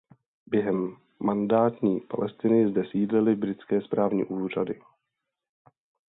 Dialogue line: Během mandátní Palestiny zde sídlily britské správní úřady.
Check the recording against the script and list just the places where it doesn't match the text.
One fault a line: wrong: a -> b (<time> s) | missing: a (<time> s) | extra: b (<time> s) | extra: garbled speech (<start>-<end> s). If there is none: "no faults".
no faults